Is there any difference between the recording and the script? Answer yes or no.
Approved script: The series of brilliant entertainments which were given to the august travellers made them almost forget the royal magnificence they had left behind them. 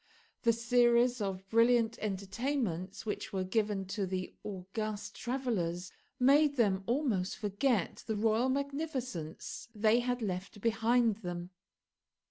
no